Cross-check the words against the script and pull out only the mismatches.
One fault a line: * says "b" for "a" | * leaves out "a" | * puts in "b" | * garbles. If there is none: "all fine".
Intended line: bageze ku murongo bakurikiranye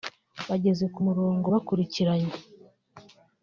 all fine